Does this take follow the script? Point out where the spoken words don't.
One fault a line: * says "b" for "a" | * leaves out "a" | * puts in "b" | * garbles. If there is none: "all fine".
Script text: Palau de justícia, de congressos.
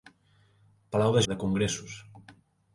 * leaves out "justícia"